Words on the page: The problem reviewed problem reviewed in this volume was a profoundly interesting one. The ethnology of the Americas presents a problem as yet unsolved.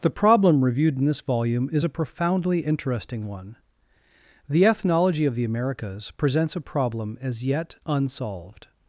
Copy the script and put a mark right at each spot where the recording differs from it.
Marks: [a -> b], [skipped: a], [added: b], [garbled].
The problem reviewed [skipped: problem reviewed] in this volume [was -> is] a profoundly interesting one. The ethnology of the Americas presents a problem as yet unsolved.